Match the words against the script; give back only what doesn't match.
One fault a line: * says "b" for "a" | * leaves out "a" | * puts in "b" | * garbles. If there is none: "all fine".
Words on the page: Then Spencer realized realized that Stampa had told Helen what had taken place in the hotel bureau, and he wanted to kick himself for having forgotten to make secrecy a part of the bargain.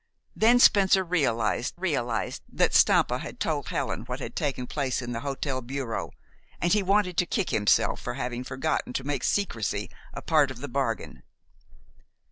all fine